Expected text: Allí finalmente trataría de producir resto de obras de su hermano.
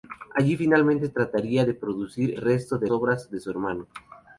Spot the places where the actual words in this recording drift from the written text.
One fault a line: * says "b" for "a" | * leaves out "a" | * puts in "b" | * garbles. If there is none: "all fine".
all fine